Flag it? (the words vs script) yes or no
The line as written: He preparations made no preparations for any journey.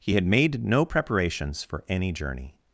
yes